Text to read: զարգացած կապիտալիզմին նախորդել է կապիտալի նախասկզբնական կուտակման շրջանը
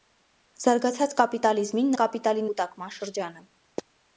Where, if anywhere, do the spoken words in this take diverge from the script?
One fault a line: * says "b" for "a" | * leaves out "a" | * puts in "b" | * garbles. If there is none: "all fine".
* leaves out "նախորդել"
* leaves out "նախասկզբնական"